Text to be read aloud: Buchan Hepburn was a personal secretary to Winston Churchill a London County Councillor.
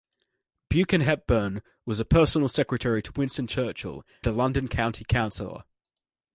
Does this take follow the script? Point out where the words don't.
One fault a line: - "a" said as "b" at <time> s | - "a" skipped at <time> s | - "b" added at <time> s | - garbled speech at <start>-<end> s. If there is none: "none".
none